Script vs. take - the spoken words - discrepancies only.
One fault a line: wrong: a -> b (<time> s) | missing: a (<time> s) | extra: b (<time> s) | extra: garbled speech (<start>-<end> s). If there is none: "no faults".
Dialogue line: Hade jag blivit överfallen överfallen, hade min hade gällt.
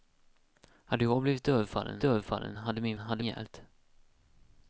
no faults